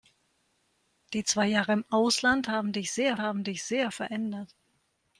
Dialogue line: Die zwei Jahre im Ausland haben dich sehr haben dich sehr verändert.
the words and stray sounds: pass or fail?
pass